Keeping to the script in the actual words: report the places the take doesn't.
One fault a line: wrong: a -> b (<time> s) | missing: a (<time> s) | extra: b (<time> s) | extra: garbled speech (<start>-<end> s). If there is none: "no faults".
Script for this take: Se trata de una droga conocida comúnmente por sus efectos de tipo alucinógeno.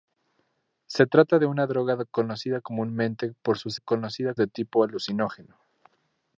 wrong: efectos -> conocida (3.8 s)